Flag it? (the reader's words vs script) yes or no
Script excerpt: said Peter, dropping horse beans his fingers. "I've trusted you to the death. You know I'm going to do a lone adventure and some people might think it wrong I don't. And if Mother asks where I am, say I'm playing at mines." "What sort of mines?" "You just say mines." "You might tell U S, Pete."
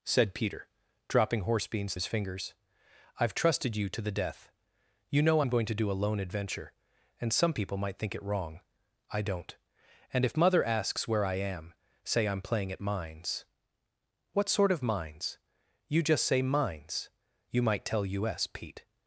no